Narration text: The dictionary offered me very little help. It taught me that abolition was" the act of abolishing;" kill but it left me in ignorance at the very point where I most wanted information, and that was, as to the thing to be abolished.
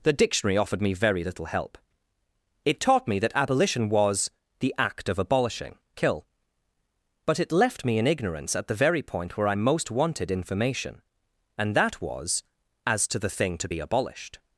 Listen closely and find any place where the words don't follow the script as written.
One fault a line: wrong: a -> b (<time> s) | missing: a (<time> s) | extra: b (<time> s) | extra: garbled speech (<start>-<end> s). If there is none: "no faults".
no faults